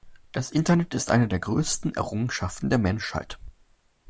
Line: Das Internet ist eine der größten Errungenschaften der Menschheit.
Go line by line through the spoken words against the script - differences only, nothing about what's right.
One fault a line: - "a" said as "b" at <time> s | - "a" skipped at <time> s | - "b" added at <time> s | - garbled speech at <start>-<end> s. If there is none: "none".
none